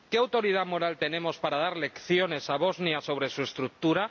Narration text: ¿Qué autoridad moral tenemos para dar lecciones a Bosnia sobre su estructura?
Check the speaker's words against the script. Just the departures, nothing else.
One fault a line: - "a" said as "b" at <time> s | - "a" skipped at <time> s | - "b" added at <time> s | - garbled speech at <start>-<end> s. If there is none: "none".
none